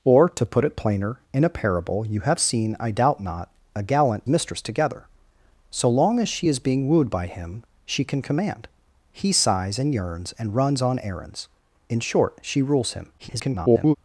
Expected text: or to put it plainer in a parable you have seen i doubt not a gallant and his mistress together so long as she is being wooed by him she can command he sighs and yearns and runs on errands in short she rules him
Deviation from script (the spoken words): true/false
true